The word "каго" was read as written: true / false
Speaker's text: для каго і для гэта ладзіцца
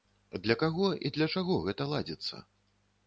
true